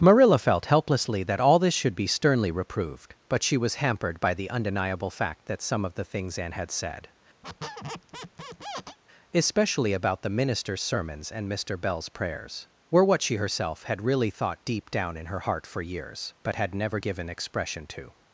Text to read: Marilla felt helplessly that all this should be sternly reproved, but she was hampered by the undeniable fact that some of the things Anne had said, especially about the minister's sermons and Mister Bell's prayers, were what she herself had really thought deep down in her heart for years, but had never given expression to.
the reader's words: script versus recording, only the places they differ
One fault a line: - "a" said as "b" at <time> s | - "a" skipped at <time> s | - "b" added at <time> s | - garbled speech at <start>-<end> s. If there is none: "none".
none